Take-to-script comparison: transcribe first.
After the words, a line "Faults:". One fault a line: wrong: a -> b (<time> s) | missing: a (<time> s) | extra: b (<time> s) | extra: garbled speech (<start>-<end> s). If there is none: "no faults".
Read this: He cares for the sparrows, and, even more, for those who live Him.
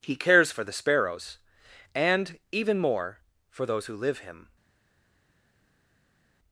He cares for the sparrows, and, even more, for those who live Him.
Faults:
no faults